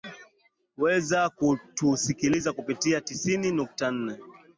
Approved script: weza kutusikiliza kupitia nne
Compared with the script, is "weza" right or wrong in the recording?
right